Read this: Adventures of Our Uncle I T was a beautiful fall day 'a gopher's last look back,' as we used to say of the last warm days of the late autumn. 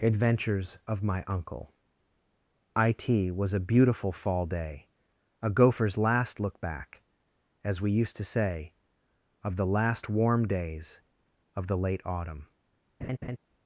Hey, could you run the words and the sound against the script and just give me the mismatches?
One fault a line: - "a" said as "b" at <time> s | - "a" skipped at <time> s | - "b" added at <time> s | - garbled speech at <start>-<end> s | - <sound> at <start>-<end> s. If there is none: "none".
- "Our" said as "My" at 1.0 s
- laugh at 13.0-13.4 s